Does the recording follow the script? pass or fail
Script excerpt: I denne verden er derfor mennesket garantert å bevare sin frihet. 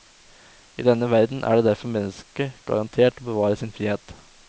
pass